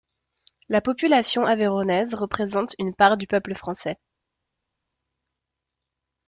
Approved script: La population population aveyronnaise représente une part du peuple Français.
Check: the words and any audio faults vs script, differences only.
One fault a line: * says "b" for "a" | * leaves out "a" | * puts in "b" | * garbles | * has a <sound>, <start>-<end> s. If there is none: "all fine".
* leaves out "population"